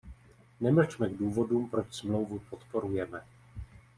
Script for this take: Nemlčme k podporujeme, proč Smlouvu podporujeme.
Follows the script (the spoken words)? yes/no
no